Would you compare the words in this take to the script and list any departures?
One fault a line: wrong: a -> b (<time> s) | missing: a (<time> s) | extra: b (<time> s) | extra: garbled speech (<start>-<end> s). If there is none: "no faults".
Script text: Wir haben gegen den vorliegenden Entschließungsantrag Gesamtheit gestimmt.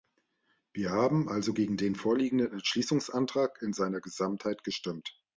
extra: also (1.3 s)
extra: in seiner (3.6 s)